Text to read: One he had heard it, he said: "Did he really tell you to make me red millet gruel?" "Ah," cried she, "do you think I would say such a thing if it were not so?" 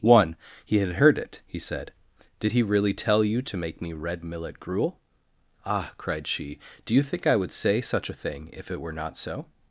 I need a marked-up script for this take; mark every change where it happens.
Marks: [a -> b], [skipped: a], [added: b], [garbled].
One he had heard it, he said: "Did he really tell you to make me red millet gruel?" "Ah," cried she, "do you think I would say such a thing if it were not so?"